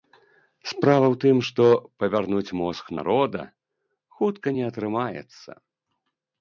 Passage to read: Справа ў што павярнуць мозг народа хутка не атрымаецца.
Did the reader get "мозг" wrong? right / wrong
right